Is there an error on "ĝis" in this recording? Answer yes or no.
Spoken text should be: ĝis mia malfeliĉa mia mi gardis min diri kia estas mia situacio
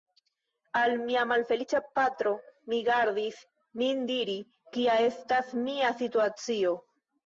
yes